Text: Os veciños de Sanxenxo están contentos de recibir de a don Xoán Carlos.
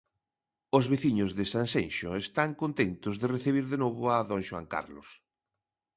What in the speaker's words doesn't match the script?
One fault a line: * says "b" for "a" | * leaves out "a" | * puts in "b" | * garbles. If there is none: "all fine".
* puts in "novo"